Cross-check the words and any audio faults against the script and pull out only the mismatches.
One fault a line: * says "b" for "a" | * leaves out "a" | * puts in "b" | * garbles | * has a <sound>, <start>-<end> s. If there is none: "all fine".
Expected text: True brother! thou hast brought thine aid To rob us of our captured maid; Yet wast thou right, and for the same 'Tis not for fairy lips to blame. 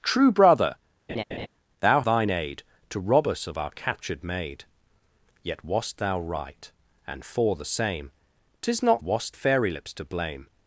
* has a laugh, 1.1-1.5 s
* leaves out "hast brought"
* says "wast" for "for"